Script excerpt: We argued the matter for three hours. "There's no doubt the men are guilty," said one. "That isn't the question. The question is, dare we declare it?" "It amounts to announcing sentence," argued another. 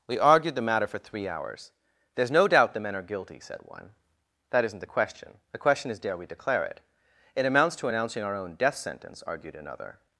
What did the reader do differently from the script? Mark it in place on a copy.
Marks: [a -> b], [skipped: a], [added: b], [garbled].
We argued the matter for three hours. "There's no doubt the men are guilty," said one. "That isn't the question. The question is, dare we declare it?" "It amounts to announcing [added: our own death] sentence," argued another.